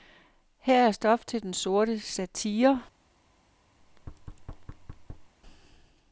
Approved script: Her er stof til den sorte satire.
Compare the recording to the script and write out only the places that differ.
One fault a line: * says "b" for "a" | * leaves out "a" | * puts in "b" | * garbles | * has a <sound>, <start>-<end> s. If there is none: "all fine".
* has a thud, 3.8-5.3 s